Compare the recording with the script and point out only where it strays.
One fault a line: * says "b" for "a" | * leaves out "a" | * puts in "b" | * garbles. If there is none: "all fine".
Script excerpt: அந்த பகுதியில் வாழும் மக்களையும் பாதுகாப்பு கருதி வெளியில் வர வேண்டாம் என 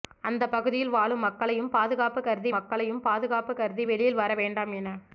* puts in "மக்களையும் பாதுகாப்பு கருதி"